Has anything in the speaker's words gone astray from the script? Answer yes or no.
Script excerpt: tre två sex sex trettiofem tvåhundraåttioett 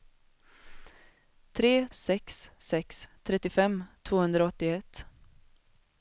yes